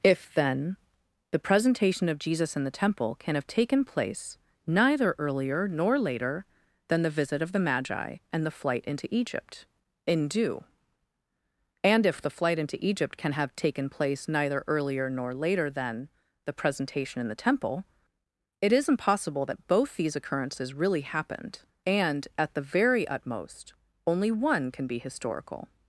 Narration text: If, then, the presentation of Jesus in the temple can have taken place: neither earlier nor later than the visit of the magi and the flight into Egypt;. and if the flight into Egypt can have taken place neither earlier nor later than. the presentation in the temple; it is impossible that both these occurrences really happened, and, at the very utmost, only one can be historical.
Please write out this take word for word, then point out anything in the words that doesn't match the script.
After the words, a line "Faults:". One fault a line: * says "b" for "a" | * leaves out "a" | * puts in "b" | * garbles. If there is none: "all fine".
If, then, the presentation of Jesus in the temple can have taken place: neither earlier nor later than the visit of the magi and the flight into Egypt;. in due and if the flight into Egypt can have taken place neither earlier nor later than. the presentation in the temple; it is impossible that both these occurrences really happened, and, at the very utmost, only one can be historical.
Faults:
* puts in "in due"